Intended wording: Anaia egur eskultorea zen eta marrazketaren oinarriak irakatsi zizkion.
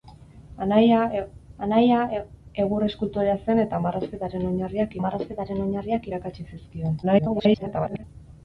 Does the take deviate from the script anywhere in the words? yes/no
yes